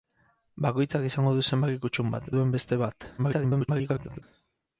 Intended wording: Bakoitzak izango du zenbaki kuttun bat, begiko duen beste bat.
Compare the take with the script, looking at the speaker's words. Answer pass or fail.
fail